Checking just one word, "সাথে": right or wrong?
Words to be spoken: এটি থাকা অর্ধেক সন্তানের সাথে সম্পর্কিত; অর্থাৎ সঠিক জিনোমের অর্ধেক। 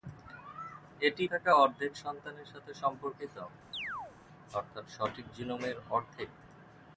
right